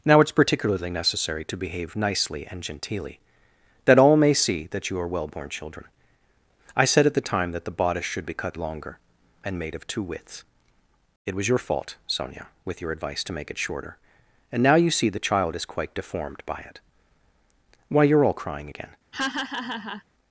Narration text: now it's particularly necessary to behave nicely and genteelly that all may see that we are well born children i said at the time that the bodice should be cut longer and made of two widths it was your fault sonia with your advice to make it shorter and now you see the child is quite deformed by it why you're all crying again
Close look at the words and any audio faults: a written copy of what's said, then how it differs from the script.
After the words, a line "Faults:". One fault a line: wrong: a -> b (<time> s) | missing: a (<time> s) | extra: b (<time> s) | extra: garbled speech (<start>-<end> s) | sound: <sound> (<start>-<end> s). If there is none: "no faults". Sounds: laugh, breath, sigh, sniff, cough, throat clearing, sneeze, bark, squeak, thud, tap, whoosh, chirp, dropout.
now it's particularly necessary to behave nicely and genteelly that all may see that you are well born children i said at the time that the bodice should be cut longer and made of two widths it was your fault sonia with your advice to make it shorter and now you see the child is quite deformed by it why you're all crying again
Faults:
wrong: we -> you (4.9 s)
sound: laugh (19.1-20.0 s)